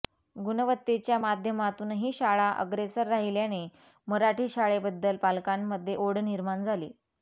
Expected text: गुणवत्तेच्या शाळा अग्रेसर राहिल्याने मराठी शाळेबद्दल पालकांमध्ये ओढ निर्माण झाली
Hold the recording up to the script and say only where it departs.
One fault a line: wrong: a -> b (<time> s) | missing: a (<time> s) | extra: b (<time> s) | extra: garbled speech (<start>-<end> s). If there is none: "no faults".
extra: माध्यमातूनही (1.2 s)